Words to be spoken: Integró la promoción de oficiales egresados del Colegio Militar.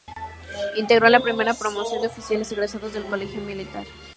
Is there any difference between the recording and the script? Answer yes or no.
yes